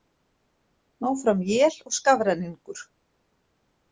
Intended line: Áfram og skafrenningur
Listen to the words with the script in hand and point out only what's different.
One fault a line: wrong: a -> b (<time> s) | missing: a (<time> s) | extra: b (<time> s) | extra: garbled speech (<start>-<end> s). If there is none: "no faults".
extra: él (1.6 s)